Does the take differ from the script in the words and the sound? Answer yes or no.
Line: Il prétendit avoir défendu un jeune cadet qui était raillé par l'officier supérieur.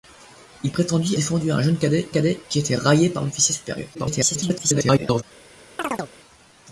yes